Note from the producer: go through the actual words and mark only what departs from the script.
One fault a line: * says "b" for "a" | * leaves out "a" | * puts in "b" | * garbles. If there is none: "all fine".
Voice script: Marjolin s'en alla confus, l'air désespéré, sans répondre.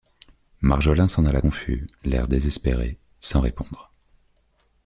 all fine